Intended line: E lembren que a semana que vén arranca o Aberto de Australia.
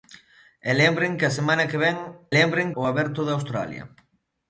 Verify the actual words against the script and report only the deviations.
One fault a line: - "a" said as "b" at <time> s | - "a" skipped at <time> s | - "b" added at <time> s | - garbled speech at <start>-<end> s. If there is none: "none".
- "arranca" said as "lembren" at 2.4 s